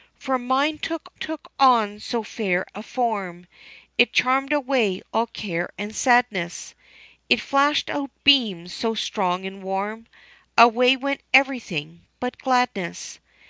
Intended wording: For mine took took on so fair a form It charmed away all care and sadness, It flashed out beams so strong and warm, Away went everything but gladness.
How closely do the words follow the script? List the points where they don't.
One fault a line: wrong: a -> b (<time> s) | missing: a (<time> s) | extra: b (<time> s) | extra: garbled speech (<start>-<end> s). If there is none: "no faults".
no faults